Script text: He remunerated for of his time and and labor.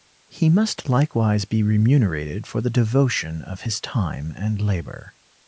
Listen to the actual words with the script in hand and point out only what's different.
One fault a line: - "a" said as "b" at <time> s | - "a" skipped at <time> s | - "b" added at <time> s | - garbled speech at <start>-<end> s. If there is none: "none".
- "must likewise be" added at 0.5 s
- "the devotion" added at 2.6 s
- "and" skipped at 4.6 s